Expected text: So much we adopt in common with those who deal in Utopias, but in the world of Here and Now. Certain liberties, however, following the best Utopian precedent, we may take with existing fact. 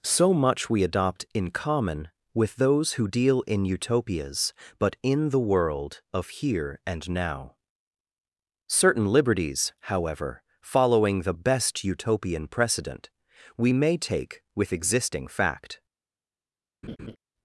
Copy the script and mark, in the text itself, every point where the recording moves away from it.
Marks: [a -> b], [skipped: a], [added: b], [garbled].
So much we adopt in common with those who deal in Utopias, but in the world of Here and Now. Certain liberties, however, following the best Utopian precedent, we may take with existing fact.